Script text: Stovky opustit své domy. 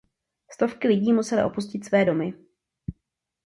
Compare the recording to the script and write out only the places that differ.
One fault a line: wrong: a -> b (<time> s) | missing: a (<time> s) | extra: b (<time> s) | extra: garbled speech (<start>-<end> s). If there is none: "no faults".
extra: lidí musely (0.9 s)